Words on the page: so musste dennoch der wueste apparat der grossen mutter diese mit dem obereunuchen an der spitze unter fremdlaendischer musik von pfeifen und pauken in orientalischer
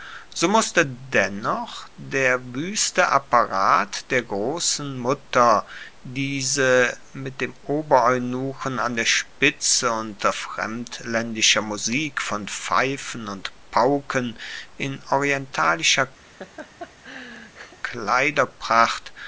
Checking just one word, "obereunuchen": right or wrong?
right